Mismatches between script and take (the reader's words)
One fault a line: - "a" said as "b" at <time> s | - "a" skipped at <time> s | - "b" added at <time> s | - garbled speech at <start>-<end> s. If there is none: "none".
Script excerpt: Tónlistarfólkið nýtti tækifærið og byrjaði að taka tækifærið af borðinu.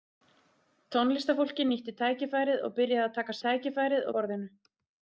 none